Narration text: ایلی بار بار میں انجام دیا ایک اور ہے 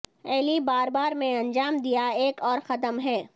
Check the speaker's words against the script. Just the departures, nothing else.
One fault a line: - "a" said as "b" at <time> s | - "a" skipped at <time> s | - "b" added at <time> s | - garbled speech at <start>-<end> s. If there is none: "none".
- "قدم" added at 2.7 s